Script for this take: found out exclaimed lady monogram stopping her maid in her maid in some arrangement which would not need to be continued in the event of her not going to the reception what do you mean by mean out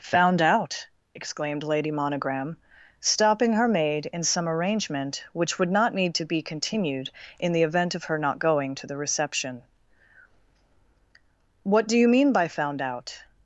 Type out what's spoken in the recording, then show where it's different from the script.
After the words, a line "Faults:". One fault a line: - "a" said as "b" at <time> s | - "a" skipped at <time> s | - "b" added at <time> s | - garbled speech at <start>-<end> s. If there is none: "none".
found out exclaimed lady monogram stopping her maid in some arrangement which would not need to be continued in the event of her not going to the reception what do you mean by found out
Faults:
- "her maid in" skipped at 4.2 s
- "mean" said as "found" at 12.5 s